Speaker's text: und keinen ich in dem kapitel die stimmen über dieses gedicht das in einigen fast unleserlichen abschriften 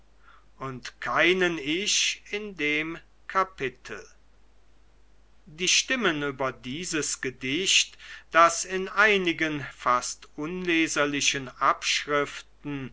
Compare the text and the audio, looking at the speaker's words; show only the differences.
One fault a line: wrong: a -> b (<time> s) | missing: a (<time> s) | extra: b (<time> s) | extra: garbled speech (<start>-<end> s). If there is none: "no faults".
no faults